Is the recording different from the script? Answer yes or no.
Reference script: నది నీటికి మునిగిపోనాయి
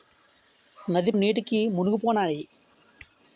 no